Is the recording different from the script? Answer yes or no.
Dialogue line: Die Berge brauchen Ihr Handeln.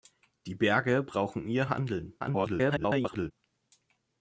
yes